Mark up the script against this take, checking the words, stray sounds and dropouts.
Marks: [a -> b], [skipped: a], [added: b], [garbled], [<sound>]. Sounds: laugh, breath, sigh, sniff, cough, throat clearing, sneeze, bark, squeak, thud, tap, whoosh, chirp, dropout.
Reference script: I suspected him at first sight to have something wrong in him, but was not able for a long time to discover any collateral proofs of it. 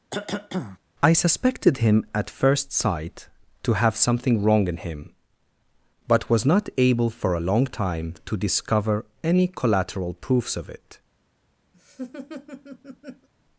[cough] I suspected him at first sight to have something wrong in him, but was not able for a long time to discover any collateral proofs of it. [laugh]